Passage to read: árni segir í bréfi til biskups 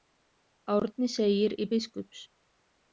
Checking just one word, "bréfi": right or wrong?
wrong